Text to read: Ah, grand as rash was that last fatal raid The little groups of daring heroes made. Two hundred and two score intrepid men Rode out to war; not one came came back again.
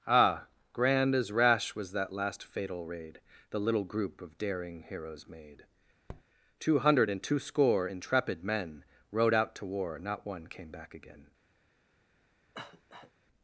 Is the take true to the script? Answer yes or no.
no